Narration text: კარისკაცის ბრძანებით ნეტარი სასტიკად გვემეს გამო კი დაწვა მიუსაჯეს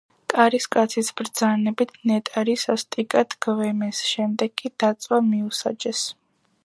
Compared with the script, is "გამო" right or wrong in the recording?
wrong